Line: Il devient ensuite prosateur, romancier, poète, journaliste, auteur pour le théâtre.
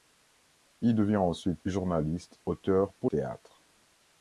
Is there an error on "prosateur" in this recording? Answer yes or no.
yes